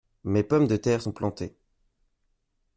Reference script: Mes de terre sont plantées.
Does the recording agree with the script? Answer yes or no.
no